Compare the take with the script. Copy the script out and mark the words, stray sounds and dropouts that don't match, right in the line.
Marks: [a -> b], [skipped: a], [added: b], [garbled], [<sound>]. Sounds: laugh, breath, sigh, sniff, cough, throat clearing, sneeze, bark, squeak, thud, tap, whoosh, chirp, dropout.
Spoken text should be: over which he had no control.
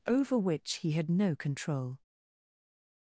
over which he had no control.